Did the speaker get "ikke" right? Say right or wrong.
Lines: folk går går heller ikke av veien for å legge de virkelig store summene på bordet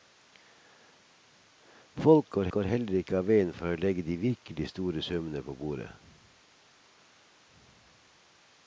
right